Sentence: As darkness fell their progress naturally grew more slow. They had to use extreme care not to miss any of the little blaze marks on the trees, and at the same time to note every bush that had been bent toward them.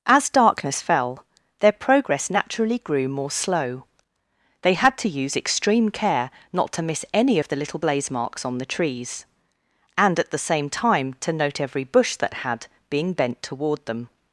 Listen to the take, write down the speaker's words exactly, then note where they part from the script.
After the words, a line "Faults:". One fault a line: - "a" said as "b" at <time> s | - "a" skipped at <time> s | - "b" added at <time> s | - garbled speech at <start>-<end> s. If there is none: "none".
As darkness fell their progress naturally grew more slow. They had to use extreme care not to miss any of the little blaze marks on the trees, and at the same time to note every bush that had being bent toward them.
Faults:
- "been" said as "being" at 12.9 s